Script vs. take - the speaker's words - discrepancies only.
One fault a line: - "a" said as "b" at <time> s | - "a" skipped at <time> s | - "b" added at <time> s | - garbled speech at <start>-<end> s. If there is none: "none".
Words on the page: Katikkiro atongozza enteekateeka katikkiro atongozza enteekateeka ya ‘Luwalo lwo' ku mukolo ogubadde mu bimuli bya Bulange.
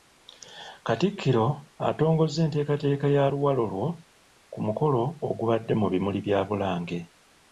- "katikkiro atongozza enteekateeka" skipped at 3.1 s